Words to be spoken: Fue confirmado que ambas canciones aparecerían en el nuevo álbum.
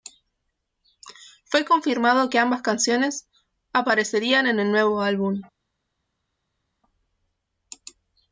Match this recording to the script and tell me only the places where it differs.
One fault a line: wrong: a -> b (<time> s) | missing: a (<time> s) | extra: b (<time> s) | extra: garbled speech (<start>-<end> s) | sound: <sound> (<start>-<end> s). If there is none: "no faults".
no faults